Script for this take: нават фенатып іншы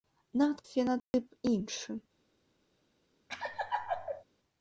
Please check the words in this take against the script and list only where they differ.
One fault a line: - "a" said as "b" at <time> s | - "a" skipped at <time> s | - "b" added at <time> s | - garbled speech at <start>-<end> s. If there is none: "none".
none